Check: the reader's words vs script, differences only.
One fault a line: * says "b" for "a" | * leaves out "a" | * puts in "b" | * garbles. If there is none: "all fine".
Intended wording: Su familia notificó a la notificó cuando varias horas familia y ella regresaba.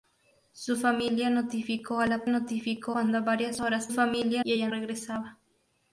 all fine